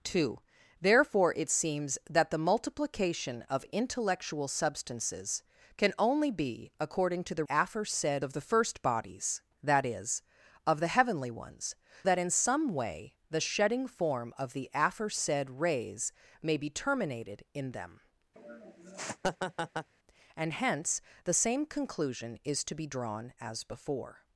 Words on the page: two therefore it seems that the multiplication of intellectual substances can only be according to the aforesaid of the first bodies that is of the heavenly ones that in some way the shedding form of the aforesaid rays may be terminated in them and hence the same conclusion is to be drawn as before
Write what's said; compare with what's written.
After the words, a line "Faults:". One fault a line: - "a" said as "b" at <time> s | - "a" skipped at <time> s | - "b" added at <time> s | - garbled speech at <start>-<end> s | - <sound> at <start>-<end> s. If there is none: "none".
two therefore it seems that the multiplication of intellectual substances can only be according to the aforesaid of the first bodies that is of the heavenly ones that in some way the shedding form of the aforesaid rays may be terminated in them and hence the same conclusion is to be drawn as before
Faults:
- laugh at 18.4-19.9 s